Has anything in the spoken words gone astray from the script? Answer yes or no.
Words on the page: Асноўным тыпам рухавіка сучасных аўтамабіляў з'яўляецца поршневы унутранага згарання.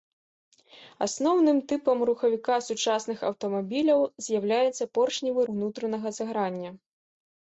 no